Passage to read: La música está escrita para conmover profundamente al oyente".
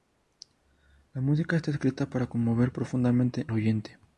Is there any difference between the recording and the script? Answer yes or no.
yes